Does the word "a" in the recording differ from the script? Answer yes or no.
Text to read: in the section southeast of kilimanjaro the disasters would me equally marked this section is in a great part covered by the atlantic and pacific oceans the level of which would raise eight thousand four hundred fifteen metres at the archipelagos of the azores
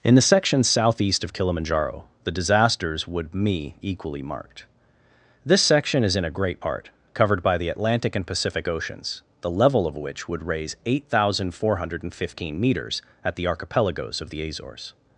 no